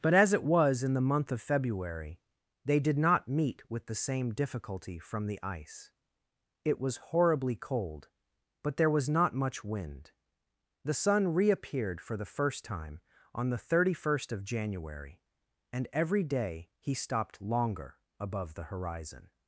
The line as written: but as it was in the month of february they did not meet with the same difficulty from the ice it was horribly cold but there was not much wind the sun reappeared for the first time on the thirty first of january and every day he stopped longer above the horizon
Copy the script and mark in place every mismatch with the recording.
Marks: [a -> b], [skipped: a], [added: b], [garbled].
but as it was in the month of february they did not meet with the same difficulty from the ice it was horribly cold but there was not much wind the sun reappeared for the first time on the thirty first of january and every day he stopped longer above the horizon